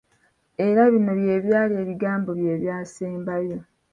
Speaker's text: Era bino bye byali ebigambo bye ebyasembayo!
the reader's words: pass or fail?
pass